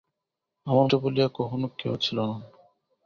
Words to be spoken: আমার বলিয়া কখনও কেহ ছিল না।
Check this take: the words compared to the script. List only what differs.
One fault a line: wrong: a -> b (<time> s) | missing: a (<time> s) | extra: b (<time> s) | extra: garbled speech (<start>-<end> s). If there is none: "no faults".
no faults